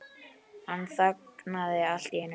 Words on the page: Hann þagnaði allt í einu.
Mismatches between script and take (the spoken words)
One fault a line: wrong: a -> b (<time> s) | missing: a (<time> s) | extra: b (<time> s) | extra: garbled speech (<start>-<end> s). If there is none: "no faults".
no faults